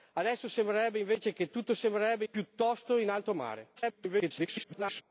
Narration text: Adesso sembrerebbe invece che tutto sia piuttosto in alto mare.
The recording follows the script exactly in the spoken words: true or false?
false